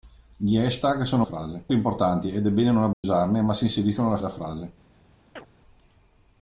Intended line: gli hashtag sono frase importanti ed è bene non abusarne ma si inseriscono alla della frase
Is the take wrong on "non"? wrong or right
right